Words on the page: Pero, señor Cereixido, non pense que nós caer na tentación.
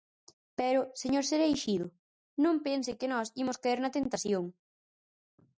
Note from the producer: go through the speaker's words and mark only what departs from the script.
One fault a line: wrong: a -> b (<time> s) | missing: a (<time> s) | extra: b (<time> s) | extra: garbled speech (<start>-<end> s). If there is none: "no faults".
extra: imos (3.4 s)